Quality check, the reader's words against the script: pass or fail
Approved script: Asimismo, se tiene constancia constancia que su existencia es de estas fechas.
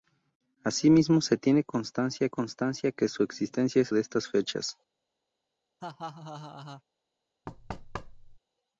pass